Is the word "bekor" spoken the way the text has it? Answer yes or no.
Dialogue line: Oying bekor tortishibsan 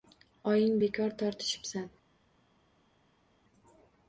yes